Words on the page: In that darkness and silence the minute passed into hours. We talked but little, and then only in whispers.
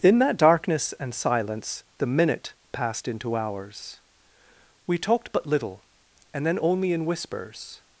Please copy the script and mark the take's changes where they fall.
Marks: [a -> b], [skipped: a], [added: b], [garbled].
In that darkness and silence the minute passed into hours. We talked but little, and then only in whispers.